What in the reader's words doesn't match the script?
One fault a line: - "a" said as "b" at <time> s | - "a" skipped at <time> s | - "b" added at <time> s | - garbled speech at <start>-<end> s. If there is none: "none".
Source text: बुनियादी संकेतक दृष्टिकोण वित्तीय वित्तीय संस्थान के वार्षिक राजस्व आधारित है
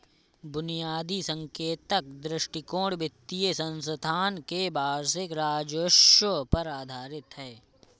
- "वित्तीय" skipped at 3.5 s
- "पर" added at 6.5 s